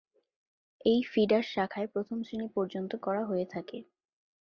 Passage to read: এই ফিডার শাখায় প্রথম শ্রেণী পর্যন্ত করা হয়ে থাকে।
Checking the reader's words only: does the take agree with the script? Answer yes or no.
yes